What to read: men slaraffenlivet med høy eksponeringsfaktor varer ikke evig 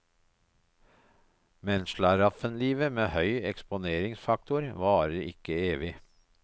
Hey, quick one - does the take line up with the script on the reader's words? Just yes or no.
yes